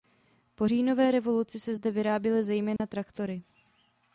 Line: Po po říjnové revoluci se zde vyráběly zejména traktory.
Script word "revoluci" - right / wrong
right